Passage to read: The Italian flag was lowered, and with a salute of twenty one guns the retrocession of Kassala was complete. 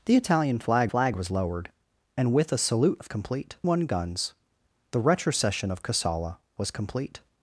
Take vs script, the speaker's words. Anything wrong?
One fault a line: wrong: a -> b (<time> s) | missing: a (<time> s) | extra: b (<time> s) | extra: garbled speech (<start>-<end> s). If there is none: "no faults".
extra: flag (0.9 s)
wrong: twenty -> complete (3.1 s)